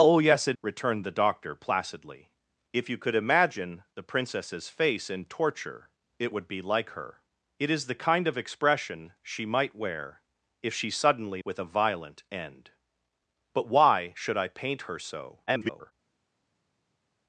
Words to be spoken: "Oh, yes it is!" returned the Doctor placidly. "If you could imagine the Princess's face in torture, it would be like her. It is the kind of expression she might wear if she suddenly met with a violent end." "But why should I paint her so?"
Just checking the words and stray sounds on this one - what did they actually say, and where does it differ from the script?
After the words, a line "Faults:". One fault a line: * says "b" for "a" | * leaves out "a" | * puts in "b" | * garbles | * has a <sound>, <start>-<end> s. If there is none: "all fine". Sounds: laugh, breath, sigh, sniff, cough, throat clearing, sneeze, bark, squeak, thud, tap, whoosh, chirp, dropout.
"Oh, yes it!" returned the Doctor placidly. "If you could imagine the Princess's face in torture, it would be like her. It is the kind of expression she might wear if she suddenly with a violent end." "But why should I paint her so?" [garbled]
Faults:
* leaves out "is"
* leaves out "met"
* garbles